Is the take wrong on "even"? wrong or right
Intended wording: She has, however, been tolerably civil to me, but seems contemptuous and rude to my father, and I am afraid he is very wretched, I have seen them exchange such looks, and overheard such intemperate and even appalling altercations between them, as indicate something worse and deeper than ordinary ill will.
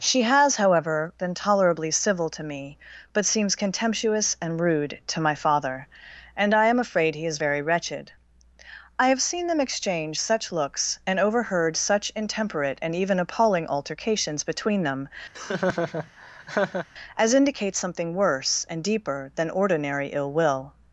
right